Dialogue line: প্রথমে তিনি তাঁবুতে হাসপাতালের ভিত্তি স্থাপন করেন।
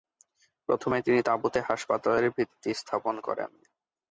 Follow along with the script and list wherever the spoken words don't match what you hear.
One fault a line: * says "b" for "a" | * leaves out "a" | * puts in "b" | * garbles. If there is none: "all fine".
all fine